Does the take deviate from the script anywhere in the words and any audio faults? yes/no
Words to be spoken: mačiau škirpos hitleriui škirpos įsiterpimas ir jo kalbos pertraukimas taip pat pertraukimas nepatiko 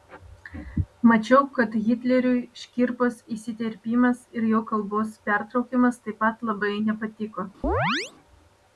yes